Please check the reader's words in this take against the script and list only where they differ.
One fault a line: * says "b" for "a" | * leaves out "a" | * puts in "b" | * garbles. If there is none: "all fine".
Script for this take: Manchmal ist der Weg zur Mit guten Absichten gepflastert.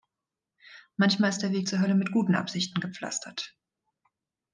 * puts in "Hölle"